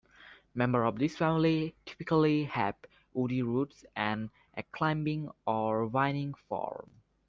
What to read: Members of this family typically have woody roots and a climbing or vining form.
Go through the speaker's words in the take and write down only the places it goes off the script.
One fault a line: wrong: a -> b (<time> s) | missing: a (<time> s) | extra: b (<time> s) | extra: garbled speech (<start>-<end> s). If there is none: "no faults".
no faults